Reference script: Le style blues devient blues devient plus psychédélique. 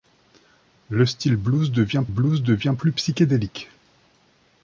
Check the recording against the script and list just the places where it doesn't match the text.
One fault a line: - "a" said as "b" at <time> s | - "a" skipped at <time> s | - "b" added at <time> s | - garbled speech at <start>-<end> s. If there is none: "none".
none